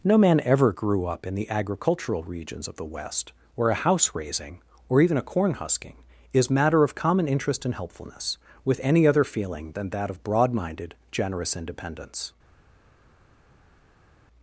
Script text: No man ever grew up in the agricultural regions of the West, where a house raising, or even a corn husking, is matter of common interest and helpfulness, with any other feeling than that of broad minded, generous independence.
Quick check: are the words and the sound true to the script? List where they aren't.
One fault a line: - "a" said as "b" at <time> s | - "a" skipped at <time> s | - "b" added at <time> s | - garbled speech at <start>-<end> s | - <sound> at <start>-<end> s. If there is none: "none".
none